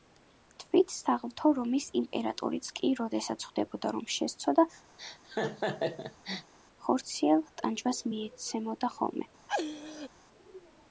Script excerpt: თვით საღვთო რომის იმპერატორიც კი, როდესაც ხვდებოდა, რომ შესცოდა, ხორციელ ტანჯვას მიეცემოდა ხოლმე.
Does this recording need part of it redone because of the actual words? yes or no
no